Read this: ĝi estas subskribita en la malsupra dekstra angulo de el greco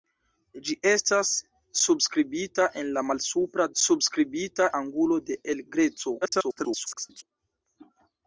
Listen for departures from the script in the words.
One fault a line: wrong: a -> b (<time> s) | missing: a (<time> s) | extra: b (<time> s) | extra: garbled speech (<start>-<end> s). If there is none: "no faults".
wrong: dekstra -> subskribita (3.8 s)
extra: garbled speech (6.2-7.2 s)